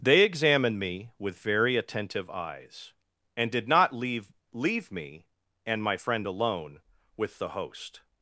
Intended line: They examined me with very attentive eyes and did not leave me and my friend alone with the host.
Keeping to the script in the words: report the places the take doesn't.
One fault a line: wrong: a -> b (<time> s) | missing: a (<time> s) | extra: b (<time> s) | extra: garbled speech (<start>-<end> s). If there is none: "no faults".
extra: leave (4.5 s)